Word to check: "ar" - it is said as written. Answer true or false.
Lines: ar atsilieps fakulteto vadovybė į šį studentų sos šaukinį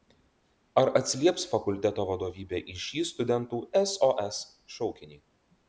true